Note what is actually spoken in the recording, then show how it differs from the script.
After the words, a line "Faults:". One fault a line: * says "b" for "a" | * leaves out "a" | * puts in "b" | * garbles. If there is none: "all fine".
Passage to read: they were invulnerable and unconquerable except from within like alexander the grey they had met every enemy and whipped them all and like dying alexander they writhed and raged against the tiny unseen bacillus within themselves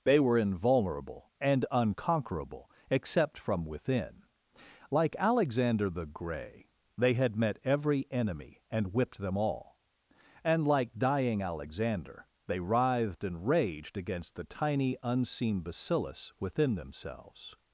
they were invulnerable and unconquerable except from within like alexander the grey they had met every enemy and whipped them all and like dying alexander they writhed and raged against the tiny unseen bacillus within themselves
Faults:
all fine